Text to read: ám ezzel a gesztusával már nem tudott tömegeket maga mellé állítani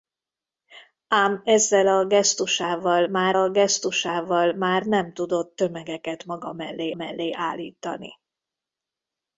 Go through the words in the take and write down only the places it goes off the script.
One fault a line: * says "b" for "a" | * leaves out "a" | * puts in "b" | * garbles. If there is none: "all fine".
* puts in "a gesztusával már"
* puts in "mellé"